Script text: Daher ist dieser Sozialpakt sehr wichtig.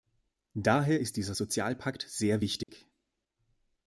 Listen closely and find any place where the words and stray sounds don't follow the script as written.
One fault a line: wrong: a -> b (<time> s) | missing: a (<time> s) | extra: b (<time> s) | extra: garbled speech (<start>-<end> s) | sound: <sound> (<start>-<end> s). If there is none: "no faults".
sound: dropout (2.6-2.7 s)